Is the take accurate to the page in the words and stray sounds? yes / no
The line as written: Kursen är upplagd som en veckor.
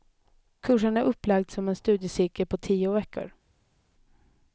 no